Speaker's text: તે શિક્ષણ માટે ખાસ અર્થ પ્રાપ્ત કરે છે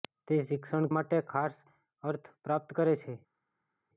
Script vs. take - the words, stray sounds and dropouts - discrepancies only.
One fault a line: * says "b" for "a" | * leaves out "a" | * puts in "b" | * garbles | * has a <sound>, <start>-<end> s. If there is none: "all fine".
all fine